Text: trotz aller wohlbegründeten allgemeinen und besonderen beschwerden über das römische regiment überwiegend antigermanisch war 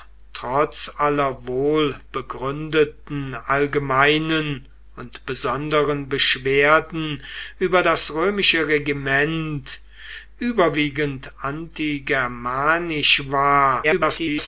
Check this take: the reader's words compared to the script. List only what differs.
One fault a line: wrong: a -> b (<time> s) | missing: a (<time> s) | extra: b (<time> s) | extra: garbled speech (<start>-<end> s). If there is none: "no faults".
extra: garbled speech (13.8-14.5 s)